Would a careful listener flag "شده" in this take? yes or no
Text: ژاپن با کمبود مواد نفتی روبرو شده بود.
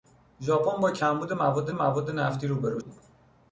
yes